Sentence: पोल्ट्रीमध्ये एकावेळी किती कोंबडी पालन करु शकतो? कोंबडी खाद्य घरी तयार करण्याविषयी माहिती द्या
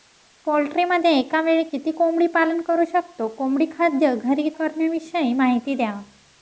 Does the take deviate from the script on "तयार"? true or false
true